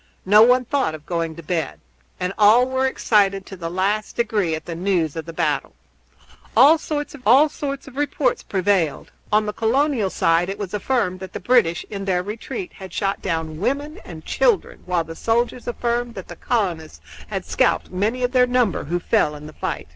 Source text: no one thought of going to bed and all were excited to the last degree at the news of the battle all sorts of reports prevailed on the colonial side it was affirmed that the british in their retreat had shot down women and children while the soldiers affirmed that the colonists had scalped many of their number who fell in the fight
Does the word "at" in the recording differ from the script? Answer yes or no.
no